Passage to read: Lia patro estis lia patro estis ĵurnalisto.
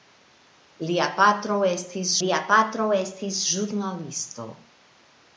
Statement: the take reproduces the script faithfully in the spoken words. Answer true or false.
true